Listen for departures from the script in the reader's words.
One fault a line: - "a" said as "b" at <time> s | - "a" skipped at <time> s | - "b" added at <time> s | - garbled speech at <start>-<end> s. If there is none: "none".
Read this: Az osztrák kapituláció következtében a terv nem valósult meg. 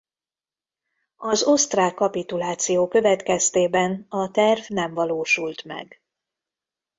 none